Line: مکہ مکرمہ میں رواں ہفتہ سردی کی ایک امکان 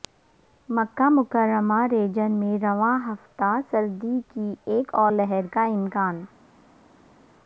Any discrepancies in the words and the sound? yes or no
yes